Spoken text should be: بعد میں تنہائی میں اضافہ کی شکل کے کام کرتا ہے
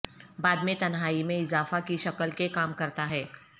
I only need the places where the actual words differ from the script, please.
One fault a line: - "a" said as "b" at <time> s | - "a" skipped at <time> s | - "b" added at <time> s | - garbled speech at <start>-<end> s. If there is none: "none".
none